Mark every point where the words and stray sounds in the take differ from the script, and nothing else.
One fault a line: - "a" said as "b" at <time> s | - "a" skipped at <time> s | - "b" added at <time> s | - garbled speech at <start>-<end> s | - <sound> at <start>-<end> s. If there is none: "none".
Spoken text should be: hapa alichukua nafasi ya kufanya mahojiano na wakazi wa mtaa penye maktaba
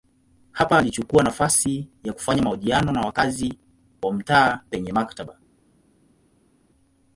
none